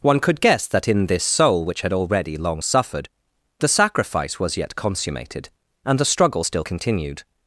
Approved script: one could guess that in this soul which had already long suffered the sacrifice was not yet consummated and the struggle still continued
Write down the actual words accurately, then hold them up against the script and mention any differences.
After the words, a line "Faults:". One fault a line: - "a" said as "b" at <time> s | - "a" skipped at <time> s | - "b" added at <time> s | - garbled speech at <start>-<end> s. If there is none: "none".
one could guess that in this soul which had already long suffered the sacrifice was yet consummated and the struggle still continued
Faults:
- "not" skipped at 4.6 s